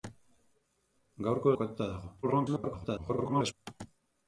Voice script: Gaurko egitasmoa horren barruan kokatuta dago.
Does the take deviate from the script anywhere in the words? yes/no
yes